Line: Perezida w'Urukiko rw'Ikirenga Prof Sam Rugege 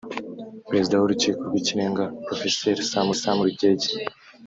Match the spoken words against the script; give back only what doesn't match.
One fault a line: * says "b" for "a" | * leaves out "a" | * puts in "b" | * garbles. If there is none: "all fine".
* puts in "Sam"